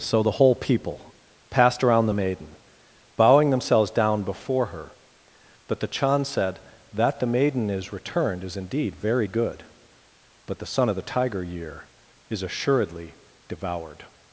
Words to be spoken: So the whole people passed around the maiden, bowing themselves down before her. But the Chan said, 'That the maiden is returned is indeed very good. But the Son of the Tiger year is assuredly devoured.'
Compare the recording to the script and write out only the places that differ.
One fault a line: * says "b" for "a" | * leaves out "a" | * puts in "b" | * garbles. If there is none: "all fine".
all fine